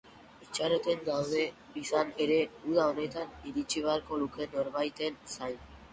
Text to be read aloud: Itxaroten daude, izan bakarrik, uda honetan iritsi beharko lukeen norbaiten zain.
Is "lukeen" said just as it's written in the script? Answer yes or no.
yes